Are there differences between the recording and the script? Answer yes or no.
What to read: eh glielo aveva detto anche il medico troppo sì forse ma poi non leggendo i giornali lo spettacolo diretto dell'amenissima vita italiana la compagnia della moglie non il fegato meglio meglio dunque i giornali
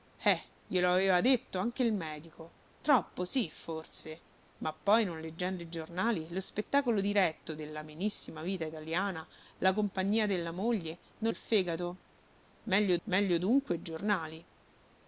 no